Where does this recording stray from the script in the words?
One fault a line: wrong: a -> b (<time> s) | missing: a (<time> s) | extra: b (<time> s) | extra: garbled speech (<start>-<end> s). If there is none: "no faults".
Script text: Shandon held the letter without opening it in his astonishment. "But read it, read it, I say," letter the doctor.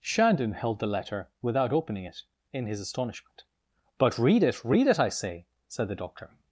wrong: letter -> said (5.7 s)